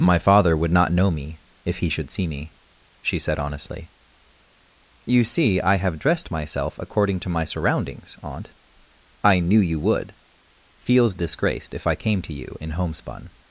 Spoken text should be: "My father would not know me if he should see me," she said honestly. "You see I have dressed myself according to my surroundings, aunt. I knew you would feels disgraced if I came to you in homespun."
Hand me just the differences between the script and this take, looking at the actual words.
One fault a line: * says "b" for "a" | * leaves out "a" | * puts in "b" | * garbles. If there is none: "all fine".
all fine